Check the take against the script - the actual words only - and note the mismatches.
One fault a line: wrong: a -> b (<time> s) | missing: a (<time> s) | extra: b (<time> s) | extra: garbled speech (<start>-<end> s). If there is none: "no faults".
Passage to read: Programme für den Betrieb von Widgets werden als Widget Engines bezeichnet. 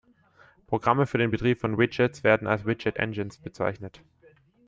no faults